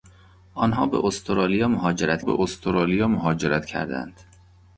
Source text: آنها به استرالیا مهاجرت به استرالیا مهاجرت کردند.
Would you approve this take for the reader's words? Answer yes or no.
yes